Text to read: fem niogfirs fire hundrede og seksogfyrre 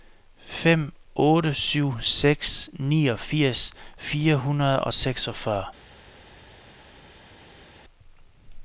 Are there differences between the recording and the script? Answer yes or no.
yes